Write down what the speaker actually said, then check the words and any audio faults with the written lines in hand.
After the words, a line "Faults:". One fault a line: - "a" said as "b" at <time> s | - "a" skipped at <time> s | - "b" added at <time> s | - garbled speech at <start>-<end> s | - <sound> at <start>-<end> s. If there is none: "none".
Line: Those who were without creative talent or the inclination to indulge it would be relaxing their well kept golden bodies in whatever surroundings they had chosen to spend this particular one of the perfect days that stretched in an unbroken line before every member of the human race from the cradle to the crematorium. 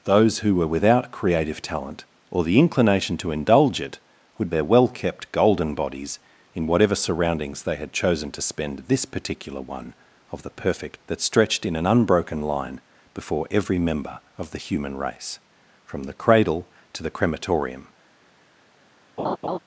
Those who were without creative talent or the inclination to indulge it would their well kept golden bodies in whatever surroundings they had chosen to spend this particular one of the perfect that stretched in an unbroken line before every member of the human race from the cradle to the crematorium.
Faults:
- "be relaxing" skipped at 4.5 s
- "days" skipped at 11.0 s
- laugh at 19.2-19.6 s